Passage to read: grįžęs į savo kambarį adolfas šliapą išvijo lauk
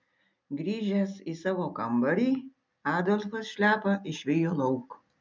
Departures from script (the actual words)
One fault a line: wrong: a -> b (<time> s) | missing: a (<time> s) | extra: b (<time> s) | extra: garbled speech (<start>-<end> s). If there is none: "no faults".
no faults